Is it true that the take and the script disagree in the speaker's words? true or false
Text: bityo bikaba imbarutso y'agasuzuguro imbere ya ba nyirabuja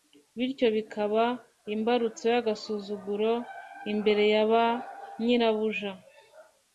false